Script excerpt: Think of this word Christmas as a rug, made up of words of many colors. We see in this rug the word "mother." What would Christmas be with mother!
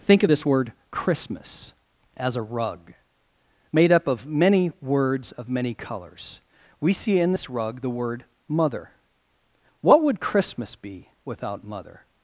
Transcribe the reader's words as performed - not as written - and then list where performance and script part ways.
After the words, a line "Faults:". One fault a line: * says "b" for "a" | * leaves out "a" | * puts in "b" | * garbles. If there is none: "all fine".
Think of this word Christmas as a rug, made up of many words of many colors. We see in this rug the word "mother." What would Christmas be without mother!
Faults:
* puts in "many"
* says "without" for "with"